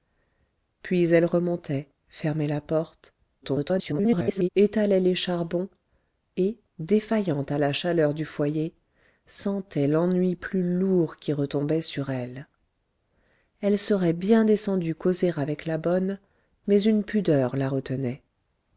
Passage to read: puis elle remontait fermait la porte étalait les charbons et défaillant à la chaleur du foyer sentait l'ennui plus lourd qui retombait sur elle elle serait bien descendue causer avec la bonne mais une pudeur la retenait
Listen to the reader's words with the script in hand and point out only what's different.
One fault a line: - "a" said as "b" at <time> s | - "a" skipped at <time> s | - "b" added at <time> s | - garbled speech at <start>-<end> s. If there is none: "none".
- garbled speech at 3.4-4.5 s